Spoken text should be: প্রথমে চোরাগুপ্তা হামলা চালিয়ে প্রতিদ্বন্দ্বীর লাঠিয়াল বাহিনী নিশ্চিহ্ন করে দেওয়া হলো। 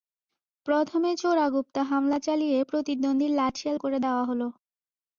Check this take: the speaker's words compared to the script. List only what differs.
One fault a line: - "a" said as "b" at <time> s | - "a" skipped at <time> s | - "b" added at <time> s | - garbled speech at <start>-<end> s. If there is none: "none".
- "বাহিনী নিশ্চিহ্ন" skipped at 3.8 s